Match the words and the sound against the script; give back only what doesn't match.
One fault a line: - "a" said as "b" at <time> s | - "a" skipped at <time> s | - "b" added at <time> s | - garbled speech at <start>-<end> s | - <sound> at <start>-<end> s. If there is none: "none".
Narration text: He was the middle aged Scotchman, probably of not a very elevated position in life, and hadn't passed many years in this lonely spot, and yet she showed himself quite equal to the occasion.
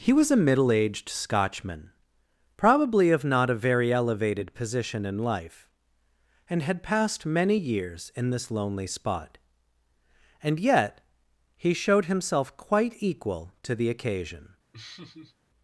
- "the" said as "a" at 0.3 s
- "hadn't" said as "had" at 6.6 s
- "she" said as "he" at 11.5 s
- laugh at 14.7-15.4 s